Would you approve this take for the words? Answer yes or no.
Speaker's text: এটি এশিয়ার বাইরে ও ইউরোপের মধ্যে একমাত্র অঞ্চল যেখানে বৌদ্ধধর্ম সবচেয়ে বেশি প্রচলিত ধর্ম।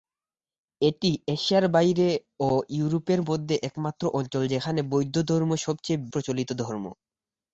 no